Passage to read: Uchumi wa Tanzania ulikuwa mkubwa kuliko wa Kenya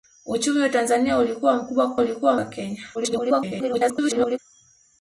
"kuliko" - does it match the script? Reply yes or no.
no